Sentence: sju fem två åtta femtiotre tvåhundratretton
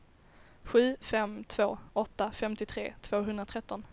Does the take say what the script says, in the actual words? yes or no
yes